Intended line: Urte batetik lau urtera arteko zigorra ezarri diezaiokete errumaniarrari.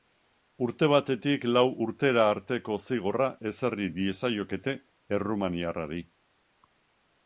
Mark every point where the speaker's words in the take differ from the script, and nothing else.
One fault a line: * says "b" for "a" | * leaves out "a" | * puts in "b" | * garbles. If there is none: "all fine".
all fine